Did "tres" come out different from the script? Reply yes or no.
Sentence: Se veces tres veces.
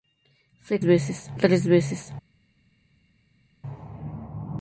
no